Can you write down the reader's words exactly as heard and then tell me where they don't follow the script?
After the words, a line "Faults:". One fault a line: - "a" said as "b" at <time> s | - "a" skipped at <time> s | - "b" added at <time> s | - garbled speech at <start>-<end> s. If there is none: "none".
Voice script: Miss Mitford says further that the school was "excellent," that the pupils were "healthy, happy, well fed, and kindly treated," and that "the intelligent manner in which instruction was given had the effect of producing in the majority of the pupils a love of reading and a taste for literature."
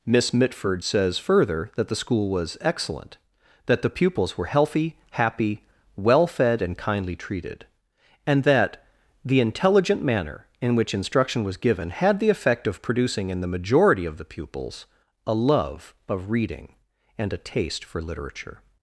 Miss Mitford says further that the school was "excellent," that the pupils were "healthy, happy, well fed, and kindly treated," and that "the intelligent manner in which instruction was given had the effect of producing in the majority of the pupils a love of reading and a taste for literature."
Faults:
none